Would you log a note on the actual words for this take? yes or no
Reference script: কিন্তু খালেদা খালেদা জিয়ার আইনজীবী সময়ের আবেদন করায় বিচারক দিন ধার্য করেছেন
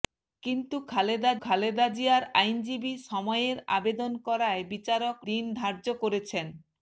no